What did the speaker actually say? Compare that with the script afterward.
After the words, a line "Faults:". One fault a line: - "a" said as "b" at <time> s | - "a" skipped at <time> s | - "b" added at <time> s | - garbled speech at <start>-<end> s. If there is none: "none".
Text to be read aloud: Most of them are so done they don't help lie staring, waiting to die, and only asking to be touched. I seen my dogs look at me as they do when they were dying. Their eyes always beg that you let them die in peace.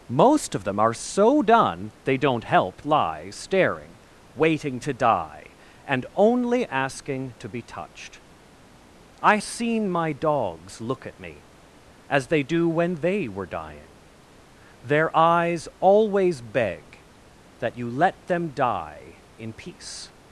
Most of them are so done they don't help lie staring, waiting to die, and only asking to be touched. I seen my dogs look at me as they do when they were dying. Their eyes always beg that you let them die in peace.
Faults:
none